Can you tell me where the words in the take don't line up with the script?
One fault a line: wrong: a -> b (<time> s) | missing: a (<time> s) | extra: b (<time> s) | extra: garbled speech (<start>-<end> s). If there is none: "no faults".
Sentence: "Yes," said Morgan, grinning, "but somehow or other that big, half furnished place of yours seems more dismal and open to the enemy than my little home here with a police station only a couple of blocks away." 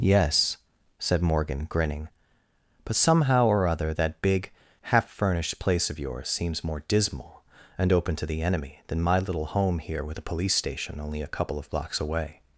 no faults